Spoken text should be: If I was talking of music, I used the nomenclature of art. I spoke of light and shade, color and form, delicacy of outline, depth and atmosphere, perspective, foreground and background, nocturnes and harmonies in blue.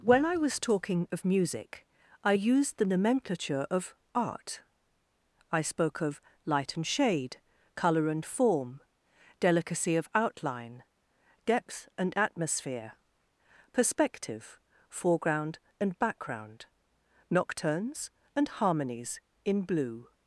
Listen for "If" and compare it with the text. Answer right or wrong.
wrong